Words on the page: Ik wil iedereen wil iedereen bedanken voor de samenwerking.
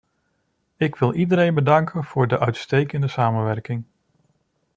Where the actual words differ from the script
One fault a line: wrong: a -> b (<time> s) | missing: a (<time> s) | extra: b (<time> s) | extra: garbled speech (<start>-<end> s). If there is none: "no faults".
missing: wil iedereen (1.6 s)
extra: uitstekende (2.4 s)